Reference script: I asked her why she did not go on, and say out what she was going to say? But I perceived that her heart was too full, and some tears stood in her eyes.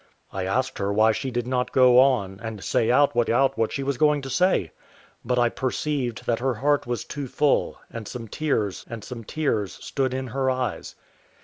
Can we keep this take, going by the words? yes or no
no